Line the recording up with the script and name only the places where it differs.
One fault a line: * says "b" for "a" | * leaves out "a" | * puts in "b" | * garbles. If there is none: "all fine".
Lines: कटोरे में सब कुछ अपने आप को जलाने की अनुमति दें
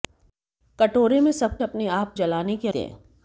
* leaves out "कुछ"
* leaves out "को"
* leaves out "अनुमति"